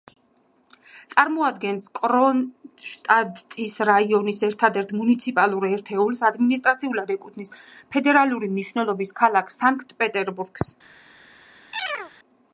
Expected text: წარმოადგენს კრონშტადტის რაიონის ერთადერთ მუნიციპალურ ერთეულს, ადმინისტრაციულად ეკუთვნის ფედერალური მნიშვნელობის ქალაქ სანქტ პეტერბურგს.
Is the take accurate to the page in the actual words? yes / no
yes